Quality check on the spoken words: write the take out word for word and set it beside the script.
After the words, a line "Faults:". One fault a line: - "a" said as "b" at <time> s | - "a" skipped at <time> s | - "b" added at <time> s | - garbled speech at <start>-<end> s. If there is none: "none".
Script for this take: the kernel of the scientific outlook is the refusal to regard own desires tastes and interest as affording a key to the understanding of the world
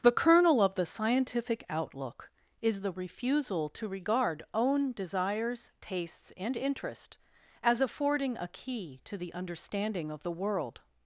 the kernel of the scientific outlook is the refusal to regard own desires tastes and interest as affording a key to the understanding of the world
Faults:
none